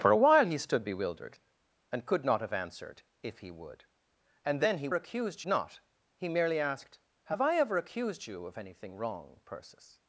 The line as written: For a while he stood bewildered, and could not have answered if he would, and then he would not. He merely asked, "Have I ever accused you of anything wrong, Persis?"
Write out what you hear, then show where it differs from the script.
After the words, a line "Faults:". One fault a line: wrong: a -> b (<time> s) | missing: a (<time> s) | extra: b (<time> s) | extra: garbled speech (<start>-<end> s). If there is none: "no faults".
For a while he stood bewildered, and could not have answered if he would, and then he accused not. He merely asked, "Have I ever accused you of anything wrong, Persis?"
Faults:
wrong: would -> accused (4.9 s)